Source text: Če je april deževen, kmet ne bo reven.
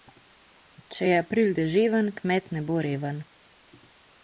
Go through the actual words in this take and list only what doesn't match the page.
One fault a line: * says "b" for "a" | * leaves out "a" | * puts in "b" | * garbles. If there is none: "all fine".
all fine